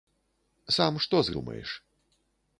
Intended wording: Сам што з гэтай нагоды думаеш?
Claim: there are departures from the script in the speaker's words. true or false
true